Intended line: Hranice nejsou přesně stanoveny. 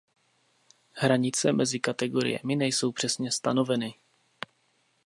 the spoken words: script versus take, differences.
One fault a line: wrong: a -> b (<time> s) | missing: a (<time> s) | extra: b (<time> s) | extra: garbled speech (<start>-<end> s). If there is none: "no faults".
extra: mezi kategoriemi (1.5 s)